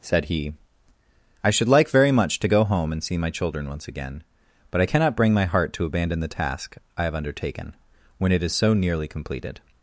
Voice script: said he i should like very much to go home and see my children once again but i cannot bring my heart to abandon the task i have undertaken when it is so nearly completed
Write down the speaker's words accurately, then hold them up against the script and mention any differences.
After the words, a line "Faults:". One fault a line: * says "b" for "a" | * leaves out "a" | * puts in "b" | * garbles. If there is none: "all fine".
said he i should like very much to go home and see my children once again but i cannot bring my heart to abandon the task i have undertaken when it is so nearly completed
Faults:
all fine